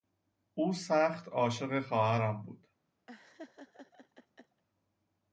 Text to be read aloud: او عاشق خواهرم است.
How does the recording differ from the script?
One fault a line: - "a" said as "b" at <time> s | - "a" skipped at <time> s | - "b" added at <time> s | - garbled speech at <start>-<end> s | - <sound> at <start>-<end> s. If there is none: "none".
- "سخت" added at 0.7 s
- "است" said as "بود" at 2.4 s
- laugh at 3.1-4.6 s